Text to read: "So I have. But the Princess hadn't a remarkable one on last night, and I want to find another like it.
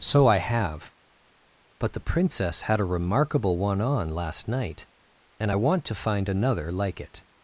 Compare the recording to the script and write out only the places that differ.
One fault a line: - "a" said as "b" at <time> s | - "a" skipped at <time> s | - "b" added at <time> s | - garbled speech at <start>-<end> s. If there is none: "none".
- "hadn't" said as "had" at 2.6 s